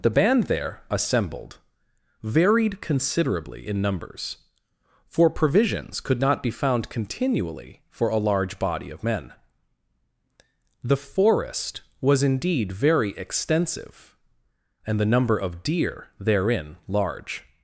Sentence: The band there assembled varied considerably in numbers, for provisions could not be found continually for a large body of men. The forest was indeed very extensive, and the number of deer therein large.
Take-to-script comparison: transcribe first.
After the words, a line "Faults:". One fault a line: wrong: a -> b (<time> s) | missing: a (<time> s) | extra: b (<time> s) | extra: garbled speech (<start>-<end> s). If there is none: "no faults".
The band there assembled varied considerably in numbers, for provisions could not be found continually for a large body of men. The forest was indeed very extensive, and the number of deer therein large.
Faults:
no faults